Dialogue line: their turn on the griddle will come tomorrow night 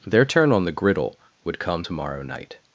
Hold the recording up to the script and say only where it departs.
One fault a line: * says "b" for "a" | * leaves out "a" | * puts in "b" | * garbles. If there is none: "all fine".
* says "would" for "will"